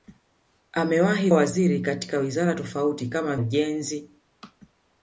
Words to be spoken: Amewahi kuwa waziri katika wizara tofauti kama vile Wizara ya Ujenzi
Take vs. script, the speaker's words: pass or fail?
fail